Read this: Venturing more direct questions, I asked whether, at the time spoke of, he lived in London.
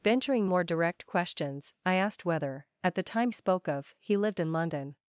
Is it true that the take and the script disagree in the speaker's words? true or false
false